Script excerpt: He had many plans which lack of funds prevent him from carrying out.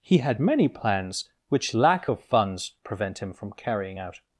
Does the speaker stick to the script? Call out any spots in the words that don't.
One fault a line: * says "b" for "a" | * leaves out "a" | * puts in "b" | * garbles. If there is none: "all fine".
all fine